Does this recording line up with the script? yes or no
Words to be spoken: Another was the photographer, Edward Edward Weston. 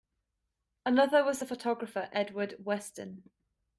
no